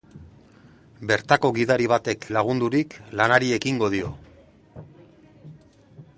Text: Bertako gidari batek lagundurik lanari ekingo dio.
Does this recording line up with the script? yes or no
yes